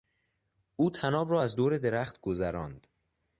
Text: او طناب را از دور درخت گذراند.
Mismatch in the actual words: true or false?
false